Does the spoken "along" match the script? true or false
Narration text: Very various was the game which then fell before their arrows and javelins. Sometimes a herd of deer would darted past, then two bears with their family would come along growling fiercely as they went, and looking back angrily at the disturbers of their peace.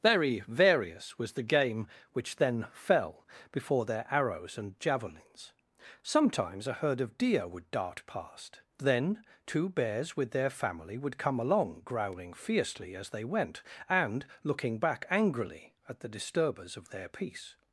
true